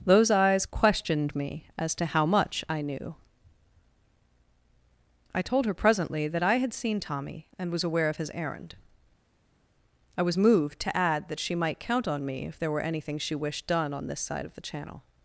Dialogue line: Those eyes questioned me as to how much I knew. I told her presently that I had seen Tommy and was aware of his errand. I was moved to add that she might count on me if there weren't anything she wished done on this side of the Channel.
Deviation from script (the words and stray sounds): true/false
true